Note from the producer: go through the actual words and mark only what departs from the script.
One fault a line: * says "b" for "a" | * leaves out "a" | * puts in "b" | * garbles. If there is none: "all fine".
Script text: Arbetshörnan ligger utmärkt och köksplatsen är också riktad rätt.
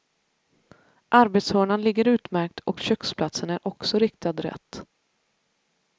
all fine